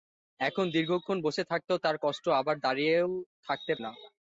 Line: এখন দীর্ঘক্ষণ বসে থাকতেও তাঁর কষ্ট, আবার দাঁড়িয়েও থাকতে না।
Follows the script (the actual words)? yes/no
yes